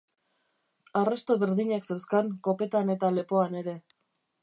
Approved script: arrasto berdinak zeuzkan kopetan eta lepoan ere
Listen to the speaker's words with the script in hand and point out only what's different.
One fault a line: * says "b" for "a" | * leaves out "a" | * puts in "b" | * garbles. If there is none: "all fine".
all fine